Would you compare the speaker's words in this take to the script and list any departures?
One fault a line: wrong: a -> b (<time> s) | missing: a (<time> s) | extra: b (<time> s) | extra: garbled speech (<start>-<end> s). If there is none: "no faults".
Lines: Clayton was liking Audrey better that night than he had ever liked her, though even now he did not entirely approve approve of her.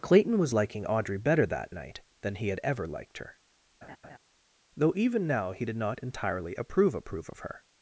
no faults